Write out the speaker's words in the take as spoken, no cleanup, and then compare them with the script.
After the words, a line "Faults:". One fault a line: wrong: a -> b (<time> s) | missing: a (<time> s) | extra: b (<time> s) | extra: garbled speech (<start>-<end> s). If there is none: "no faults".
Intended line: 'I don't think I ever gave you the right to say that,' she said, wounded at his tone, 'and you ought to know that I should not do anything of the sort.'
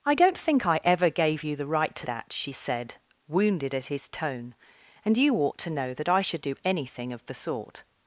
'I don't think I ever gave you the right to that,' she said, wounded at his tone, 'and you ought to know that I should do anything of the sort.'
Faults:
missing: say (2.1 s)
missing: not (6.4 s)